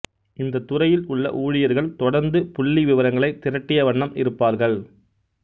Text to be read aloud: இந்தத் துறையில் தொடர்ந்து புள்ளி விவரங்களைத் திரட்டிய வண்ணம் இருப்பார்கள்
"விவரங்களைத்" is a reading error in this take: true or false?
false